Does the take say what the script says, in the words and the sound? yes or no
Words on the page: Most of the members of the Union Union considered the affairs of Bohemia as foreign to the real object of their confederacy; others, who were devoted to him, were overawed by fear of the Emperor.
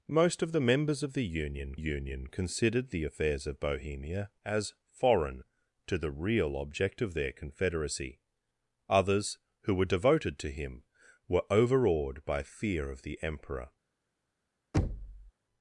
no